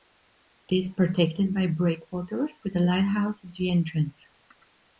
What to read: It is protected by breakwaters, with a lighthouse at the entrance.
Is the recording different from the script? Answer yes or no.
no